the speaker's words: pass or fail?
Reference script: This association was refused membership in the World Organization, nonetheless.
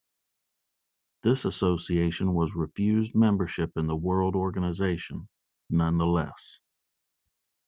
pass